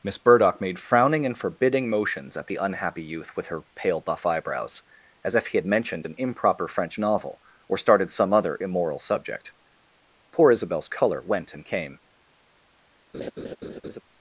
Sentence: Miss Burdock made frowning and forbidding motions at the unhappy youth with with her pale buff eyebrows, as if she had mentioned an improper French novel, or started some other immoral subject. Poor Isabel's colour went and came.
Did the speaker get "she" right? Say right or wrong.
wrong